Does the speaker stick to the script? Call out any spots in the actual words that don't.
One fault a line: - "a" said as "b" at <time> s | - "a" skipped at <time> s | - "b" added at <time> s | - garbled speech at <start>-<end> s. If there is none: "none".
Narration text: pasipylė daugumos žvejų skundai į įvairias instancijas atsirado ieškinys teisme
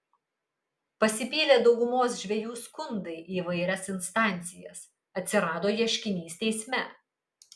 none